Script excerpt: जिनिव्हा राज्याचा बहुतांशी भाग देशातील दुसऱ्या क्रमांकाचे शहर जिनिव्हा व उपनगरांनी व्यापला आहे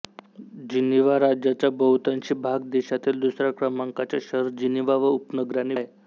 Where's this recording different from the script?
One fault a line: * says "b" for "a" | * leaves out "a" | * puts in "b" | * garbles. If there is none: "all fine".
* leaves out "व्यापला"